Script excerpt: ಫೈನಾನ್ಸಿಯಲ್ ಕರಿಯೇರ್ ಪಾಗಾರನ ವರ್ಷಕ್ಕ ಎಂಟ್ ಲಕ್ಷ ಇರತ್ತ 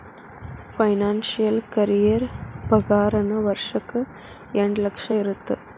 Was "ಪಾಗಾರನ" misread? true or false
false